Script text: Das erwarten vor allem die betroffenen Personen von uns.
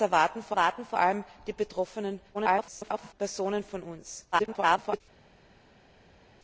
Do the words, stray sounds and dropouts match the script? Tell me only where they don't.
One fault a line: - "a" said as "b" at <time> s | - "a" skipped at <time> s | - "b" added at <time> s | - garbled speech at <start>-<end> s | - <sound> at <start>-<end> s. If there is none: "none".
- "erwarten vor" added at 0.5 s
- garbled speech at 2.3-3.1 s
- garbled speech at 4.3-5.0 s